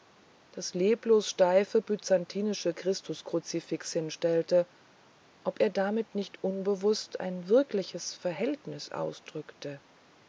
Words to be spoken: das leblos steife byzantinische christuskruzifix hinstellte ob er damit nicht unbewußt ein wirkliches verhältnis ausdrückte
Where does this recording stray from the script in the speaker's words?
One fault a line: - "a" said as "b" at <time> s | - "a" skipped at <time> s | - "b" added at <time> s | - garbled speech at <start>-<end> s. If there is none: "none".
none